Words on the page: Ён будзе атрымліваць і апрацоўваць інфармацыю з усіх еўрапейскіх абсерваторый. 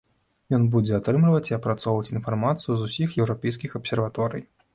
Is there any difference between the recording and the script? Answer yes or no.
no